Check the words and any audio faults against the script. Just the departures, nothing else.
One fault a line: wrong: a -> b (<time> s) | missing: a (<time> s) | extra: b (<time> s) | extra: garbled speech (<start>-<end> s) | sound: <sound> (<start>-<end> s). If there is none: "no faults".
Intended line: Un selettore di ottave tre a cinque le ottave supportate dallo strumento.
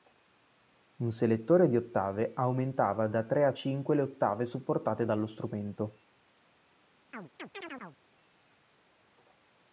extra: aumentava da (2.3 s)
sound: chirp (7.1-8.0 s)